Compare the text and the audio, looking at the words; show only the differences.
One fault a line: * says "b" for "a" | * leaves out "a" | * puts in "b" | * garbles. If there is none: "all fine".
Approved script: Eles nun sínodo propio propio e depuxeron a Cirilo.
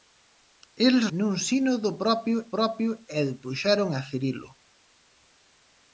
all fine